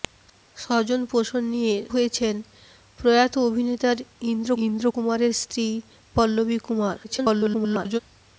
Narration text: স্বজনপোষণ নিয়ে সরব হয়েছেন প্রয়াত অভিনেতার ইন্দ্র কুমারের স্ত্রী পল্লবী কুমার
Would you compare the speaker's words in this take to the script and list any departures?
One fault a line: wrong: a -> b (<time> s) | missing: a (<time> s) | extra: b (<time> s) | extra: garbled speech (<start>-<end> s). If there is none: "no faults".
missing: সরব (1.8 s)
extra: ইন্দ্র (4.6 s)
extra: garbled speech (7.0-8.0 s)